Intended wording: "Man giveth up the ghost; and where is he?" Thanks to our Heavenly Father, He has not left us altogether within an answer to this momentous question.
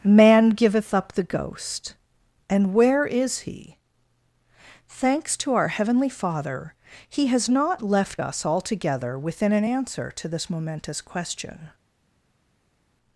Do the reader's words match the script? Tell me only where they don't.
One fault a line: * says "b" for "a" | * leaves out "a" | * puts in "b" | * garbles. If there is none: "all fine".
all fine